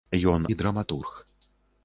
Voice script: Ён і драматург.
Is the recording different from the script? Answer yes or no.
no